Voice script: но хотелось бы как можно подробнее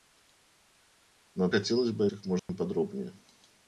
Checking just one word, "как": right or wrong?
right